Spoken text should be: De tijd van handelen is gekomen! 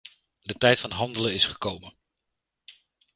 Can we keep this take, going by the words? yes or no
yes